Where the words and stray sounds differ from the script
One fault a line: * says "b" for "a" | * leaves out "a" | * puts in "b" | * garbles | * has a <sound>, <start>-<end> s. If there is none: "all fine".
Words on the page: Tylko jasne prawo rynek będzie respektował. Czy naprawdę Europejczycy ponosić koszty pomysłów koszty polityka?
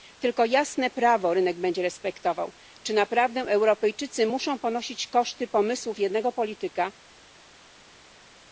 * puts in "muszą"
* says "jednego" for "koszty"